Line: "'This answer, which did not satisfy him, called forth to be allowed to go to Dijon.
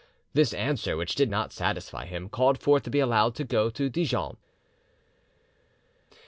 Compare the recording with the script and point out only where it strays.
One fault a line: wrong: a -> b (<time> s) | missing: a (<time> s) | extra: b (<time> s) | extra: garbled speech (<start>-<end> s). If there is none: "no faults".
no faults